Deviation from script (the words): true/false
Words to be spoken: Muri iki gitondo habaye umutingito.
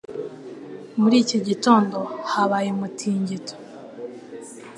false